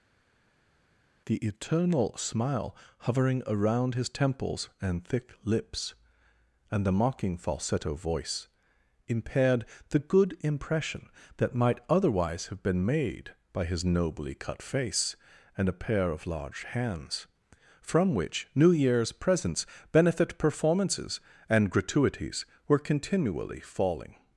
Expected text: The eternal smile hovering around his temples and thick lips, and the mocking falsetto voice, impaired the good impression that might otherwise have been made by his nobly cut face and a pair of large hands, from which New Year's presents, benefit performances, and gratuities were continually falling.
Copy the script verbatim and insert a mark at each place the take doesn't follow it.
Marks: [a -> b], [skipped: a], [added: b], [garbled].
The eternal smile hovering around his temples and thick lips, and the mocking falsetto voice, impaired the good impression that might otherwise have been made by his nobly cut face and a pair of large hands, from which New Year's presents, benefit performances, and gratuities were continually falling.